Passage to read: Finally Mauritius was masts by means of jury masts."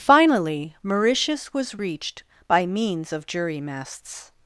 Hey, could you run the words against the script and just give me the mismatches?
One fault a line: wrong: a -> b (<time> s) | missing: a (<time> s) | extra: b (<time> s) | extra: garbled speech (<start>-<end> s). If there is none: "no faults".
wrong: masts -> reached (1.8 s)